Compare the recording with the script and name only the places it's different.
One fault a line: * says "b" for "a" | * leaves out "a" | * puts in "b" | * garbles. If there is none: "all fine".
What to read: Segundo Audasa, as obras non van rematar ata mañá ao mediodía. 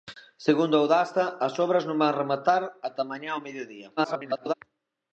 * garbles